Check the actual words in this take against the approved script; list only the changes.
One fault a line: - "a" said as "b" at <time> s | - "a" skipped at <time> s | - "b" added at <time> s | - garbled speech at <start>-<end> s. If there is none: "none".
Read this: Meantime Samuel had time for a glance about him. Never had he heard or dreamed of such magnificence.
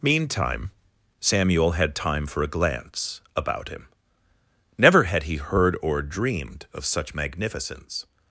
none